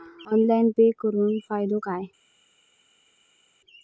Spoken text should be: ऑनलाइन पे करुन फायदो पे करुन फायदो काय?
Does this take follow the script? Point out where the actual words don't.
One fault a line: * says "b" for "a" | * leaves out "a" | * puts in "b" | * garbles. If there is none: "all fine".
* leaves out "पे करुन फायदो"